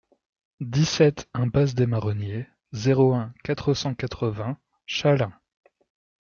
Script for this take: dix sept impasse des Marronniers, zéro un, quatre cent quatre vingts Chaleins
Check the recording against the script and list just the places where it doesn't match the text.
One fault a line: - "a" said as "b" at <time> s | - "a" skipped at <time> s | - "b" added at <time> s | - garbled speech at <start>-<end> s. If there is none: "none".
none